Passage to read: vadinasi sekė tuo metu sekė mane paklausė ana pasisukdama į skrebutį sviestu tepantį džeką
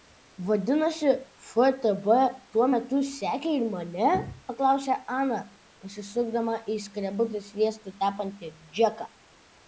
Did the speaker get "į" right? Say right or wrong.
right